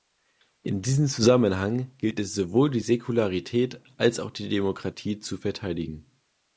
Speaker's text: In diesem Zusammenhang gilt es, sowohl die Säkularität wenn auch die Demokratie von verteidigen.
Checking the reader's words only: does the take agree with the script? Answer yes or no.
no